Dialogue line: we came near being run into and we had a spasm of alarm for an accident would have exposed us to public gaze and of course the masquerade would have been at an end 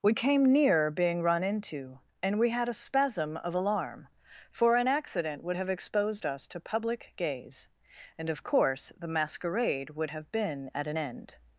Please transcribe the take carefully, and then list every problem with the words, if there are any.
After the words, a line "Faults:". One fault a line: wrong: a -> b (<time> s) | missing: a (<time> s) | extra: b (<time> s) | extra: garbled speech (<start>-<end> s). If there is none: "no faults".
we came near being run into and we had a spasm of alarm for an accident would have exposed us to public gaze and of course the masquerade would have been at an end
Faults:
no faults